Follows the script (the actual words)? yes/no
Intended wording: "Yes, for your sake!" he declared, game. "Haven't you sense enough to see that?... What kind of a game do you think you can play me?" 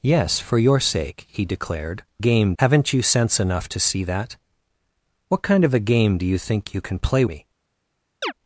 yes